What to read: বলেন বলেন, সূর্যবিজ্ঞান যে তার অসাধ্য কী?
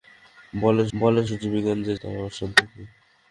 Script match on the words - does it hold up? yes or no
yes